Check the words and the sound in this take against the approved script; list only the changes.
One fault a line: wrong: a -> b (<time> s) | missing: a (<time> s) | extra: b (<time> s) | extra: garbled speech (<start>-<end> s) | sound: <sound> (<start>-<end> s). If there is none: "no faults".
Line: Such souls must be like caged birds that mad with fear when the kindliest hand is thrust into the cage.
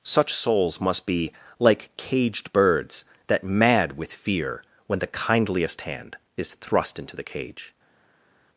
no faults